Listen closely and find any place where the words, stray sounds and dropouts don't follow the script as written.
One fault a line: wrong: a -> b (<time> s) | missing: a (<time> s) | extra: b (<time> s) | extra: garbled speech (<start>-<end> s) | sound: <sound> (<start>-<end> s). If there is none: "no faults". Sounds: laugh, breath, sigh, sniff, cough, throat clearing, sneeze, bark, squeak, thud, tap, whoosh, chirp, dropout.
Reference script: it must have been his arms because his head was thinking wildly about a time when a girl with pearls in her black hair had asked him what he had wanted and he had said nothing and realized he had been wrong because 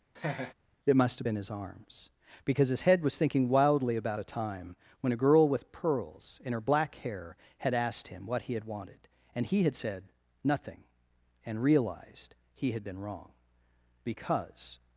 sound: laugh (0.2-0.5 s)